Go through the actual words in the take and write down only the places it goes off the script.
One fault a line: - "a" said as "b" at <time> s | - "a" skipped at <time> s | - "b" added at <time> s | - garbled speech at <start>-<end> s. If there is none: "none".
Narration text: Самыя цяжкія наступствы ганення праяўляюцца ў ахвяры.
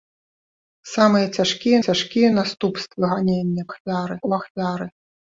- "цяжкія" added at 1.9 s
- "праяўляюцца" said as "ахвяры" at 3.7 s